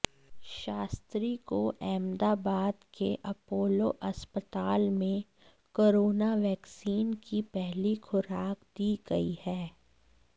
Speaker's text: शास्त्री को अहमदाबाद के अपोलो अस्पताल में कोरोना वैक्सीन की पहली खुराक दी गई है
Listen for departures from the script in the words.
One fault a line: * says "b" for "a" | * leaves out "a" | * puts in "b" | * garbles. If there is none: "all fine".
all fine